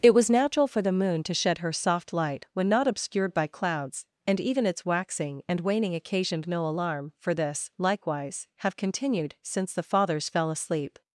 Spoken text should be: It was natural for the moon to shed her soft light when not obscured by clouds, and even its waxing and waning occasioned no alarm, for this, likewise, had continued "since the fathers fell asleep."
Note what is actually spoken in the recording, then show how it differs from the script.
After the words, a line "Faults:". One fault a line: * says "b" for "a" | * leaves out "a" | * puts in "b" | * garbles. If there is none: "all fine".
It was natural for the moon to shed her soft light when not obscured by clouds, and even its waxing and waning occasioned no alarm, for this, likewise, have continued "since the fathers fell asleep."
Faults:
* says "have" for "had"